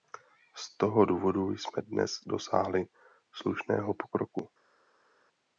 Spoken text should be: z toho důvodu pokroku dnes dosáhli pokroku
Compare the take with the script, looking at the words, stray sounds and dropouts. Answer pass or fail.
fail